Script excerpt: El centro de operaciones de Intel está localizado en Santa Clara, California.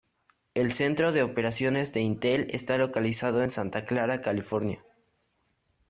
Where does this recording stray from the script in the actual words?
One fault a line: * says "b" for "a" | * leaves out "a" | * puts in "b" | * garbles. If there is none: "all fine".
all fine